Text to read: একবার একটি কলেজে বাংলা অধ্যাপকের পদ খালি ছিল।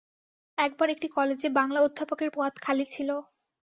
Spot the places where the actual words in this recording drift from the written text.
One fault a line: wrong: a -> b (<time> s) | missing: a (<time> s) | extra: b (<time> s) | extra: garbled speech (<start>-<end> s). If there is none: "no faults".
no faults